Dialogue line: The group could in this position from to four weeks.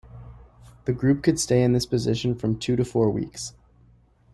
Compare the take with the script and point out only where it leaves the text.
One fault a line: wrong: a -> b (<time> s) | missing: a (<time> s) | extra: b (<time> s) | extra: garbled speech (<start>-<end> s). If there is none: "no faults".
extra: stay (1.4 s)
extra: two (2.6 s)